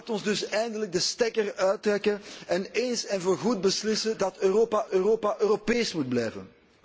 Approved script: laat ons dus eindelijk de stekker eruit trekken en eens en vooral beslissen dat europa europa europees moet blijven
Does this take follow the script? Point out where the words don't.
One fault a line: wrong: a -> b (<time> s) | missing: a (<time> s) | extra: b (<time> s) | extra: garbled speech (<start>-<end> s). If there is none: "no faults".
no faults